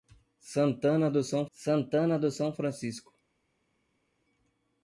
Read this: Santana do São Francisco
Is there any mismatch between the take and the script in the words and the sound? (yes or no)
yes